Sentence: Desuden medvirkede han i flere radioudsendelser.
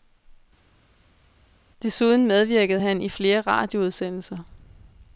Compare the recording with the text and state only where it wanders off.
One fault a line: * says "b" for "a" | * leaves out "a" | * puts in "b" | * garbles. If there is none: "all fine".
all fine